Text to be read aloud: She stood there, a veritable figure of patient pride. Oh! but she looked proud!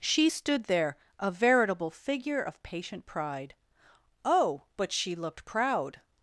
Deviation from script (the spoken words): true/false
false